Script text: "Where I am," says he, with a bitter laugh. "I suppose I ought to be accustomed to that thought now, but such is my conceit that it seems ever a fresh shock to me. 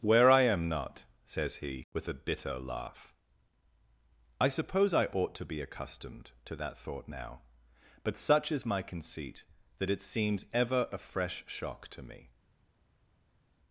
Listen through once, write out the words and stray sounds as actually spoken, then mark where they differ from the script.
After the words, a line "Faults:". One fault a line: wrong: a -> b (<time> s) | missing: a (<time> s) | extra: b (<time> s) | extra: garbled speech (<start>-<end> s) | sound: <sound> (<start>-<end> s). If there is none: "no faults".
"Where I am not," says he, with a bitter laugh. "I suppose I ought to be accustomed to that thought now, but such is my conceit that it seems ever a fresh shock to me.
Faults:
extra: not (0.7 s)